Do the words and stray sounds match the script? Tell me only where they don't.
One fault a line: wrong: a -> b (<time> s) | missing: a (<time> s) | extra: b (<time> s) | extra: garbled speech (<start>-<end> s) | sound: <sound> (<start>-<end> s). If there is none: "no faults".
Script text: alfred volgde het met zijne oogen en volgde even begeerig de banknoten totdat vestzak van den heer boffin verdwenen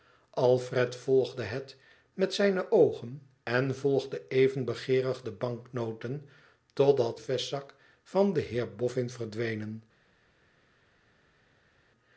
no faults